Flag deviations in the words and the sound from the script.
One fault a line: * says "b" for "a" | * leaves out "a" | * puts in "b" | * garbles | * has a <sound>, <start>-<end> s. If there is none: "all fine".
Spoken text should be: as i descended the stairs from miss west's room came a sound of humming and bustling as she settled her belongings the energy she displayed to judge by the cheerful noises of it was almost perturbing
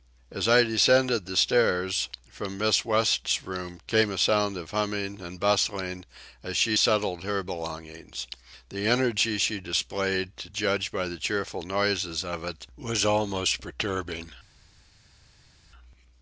all fine